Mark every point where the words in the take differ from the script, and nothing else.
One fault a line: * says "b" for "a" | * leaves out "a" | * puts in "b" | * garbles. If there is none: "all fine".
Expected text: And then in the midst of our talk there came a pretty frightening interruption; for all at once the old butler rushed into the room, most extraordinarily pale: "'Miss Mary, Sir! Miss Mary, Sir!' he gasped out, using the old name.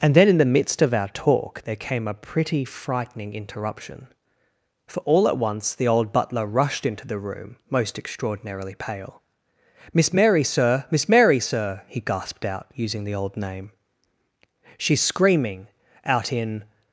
* puts in "She's screaming out in"